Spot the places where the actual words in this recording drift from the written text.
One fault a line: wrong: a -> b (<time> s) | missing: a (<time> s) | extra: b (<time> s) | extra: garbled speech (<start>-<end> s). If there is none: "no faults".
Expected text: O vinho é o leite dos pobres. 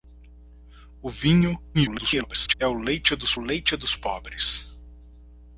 extra: garbled speech (1.7-2.5 s)
extra: leite dos (3.4 s)